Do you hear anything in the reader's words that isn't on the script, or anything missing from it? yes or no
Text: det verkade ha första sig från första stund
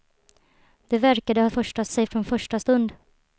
no